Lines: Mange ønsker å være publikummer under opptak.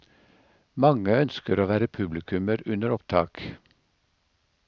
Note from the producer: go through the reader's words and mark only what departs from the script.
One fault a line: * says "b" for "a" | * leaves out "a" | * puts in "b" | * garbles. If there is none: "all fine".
all fine